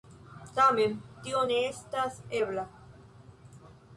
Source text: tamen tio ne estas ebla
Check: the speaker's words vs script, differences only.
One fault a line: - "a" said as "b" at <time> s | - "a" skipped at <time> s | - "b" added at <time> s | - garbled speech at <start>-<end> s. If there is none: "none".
none